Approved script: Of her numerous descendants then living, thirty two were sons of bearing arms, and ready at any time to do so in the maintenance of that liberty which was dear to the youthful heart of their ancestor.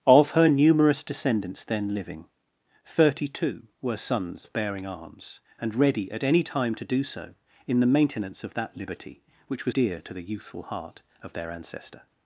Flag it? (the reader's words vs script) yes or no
no